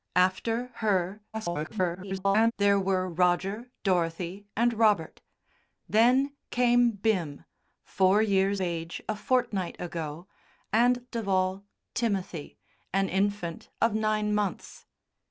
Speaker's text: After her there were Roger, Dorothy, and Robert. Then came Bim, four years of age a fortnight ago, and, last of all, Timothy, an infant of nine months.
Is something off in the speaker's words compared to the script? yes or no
yes